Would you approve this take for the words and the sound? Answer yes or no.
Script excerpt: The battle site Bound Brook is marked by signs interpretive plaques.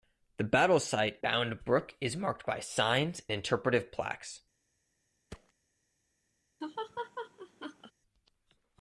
no